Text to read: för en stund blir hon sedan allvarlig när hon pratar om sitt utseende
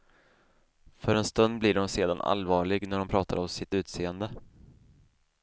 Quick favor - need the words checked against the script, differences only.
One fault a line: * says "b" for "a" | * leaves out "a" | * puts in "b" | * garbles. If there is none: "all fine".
all fine